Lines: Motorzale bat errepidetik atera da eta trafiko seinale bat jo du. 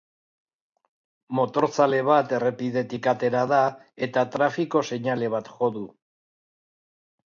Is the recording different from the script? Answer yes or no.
no